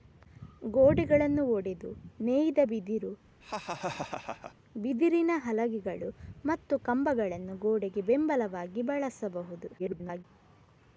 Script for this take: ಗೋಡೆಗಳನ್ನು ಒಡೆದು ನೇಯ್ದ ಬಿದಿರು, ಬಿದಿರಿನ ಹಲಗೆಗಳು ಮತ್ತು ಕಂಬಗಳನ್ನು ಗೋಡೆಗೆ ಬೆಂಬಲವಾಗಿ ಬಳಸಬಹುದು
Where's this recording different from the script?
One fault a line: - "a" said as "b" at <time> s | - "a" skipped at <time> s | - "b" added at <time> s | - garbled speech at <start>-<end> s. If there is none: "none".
- garbled speech at 9.8-10.2 s